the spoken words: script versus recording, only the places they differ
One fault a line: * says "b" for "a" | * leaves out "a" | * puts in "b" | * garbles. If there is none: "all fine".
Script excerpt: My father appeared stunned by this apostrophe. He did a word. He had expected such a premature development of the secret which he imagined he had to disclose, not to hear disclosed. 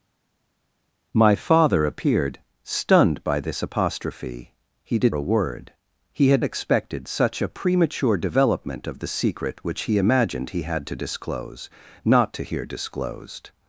all fine